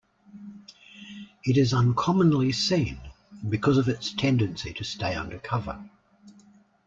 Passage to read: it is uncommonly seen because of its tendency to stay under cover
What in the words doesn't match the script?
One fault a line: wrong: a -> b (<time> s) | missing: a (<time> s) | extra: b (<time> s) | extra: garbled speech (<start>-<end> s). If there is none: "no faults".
no faults